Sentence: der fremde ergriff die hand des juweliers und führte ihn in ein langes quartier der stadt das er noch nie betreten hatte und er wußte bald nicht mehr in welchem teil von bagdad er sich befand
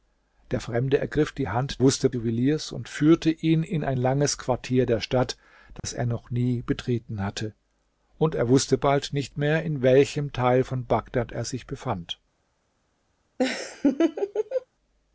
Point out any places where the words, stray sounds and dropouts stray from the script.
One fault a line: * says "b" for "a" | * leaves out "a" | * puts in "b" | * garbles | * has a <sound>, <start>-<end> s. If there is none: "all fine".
* says "wußte" for "des"
* has a dropout, 5.8-5.8 s
* has a laugh, 13.4-14.7 s